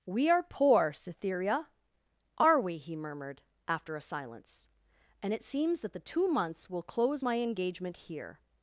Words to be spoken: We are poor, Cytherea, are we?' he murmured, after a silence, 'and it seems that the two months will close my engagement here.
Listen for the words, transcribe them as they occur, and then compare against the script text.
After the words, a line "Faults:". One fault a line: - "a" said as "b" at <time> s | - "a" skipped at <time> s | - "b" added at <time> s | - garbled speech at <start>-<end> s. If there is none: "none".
We are poor, Cytherea, are we?' he murmured, after a silence, 'and it seems that the two months will close my engagement here.
Faults:
none